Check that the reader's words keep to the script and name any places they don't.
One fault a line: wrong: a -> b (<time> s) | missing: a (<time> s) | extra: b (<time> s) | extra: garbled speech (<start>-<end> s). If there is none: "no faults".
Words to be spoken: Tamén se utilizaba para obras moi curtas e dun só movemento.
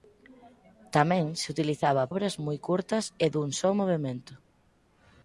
missing: para (2.0 s)